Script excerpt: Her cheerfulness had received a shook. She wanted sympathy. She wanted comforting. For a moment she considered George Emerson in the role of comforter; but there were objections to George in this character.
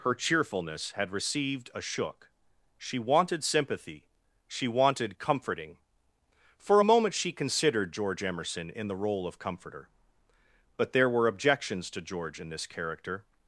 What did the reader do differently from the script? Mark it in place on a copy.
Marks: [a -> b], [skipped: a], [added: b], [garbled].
Her cheerfulness had received a shook. She wanted sympathy. She wanted comforting. For a moment she considered George Emerson in the role of comforter; but there were objections to George in this character.